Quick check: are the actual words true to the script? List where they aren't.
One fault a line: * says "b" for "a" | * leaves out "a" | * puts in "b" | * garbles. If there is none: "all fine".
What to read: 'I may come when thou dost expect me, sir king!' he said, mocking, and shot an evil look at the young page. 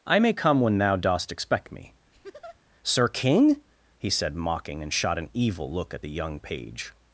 all fine